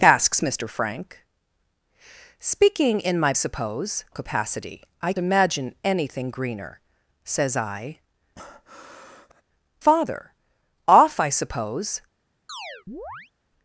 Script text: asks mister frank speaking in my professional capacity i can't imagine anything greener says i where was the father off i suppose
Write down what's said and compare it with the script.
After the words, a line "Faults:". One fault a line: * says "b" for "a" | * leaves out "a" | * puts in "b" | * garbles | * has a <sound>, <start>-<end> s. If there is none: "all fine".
asks mister frank speaking in my suppose capacity i imagine anything greener says i father off i suppose
Faults:
* says "suppose" for "professional"
* leaves out "can't"
* leaves out "where was the"
* has a breath, 8.4-9.4 s
* has a chirp, 12.5-13.3 s